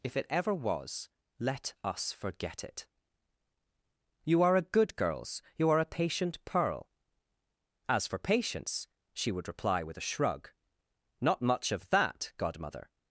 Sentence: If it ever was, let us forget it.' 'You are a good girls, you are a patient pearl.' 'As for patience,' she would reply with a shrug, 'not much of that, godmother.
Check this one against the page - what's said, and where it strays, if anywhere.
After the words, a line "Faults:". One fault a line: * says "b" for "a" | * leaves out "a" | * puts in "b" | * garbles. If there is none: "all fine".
If it ever was, let us forget it.' 'You are a good girls, you are a patient pearl.' 'As for patience,' she would reply with a shrug, 'not much of that, godmother.
Faults:
all fine